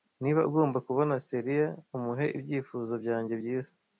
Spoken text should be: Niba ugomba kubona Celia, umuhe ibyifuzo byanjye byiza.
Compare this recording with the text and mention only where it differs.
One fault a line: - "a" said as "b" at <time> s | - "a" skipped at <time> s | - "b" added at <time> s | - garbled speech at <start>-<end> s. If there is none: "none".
none